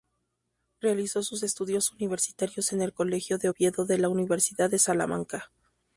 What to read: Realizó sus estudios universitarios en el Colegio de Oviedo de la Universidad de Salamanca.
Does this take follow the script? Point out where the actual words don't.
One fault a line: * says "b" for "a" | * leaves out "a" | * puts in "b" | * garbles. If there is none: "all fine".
all fine